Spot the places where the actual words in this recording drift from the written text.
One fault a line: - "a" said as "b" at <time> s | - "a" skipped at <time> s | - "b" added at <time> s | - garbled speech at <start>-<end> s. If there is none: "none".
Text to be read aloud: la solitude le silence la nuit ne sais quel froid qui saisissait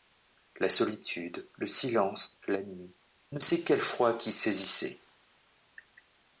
none